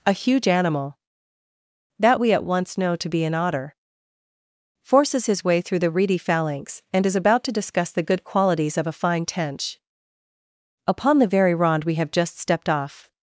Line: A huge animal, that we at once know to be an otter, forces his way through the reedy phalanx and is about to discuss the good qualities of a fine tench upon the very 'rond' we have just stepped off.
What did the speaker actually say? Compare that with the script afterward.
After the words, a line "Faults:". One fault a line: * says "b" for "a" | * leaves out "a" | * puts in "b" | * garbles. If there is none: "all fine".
A huge animal, that we at once know to be an otter, forces his way through the reedy phalanx and is about to discuss the good qualities of a fine tench upon the very 'rond' we have just stepped off.
Faults:
all fine